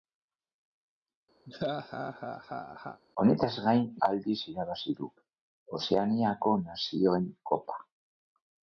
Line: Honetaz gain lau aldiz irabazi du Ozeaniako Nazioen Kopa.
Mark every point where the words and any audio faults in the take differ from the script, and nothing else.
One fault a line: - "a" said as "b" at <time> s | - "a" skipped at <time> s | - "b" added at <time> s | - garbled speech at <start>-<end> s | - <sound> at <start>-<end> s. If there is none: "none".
- laugh at 1.5-3.0 s
- "lau" skipped at 3.8 s